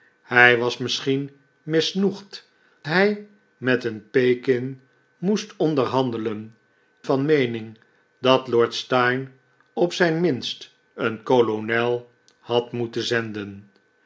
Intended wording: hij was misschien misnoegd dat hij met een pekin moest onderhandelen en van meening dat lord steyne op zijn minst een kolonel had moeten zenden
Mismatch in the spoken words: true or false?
true